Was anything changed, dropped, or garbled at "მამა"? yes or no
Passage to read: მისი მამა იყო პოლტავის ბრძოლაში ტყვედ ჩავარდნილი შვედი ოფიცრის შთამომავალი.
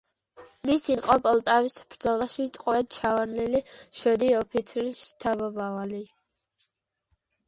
yes